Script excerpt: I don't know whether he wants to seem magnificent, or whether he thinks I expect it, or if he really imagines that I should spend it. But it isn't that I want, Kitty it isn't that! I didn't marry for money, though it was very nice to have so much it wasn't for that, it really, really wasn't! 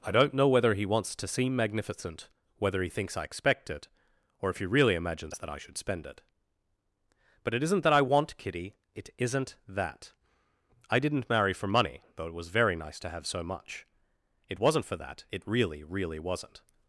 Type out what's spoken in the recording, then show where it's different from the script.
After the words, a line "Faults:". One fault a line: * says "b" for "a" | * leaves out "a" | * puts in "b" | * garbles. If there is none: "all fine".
I don't know whether he wants to seem magnificent, whether he thinks I expect it, or if he really imagines that I should spend it. But it isn't that I want, Kitty it isn't that! I didn't marry for money, though it was very nice to have so much it wasn't for that, it really, really wasn't!
Faults:
* leaves out "or"